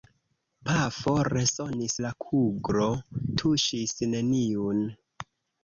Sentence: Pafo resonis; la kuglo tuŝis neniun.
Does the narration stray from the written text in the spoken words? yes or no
no